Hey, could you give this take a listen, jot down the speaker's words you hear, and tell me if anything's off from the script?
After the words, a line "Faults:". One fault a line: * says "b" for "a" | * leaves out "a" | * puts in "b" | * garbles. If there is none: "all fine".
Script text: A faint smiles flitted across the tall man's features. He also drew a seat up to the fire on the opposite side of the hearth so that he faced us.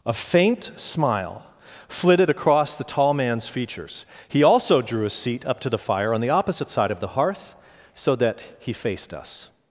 A faint smile flitted across the tall man's features. He also drew a seat up to the fire on the opposite side of the hearth so that he faced us.
Faults:
* says "smile" for "smiles"